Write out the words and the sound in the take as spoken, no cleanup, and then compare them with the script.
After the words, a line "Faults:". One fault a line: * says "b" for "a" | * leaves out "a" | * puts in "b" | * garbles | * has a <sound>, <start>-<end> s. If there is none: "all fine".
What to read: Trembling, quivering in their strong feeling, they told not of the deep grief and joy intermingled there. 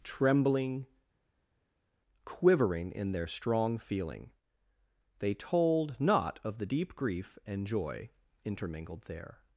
Trembling, quivering in their strong feeling, they told not of the deep grief and joy intermingled there.
Faults:
all fine